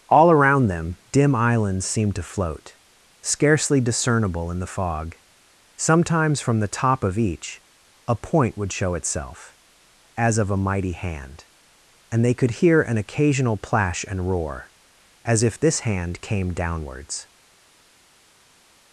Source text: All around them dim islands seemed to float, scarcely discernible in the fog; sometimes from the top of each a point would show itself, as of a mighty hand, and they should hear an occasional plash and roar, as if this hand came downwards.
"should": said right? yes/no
no